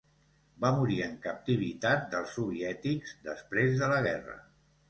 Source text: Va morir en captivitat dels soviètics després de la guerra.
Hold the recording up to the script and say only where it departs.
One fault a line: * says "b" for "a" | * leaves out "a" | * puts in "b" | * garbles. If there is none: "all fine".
all fine